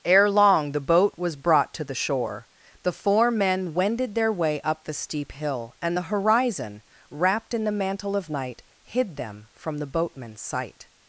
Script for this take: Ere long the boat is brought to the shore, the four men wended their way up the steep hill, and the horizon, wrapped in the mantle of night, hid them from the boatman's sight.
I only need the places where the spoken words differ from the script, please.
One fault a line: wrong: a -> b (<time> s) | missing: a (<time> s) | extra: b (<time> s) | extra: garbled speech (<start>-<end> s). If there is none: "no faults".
wrong: is -> was (1.1 s)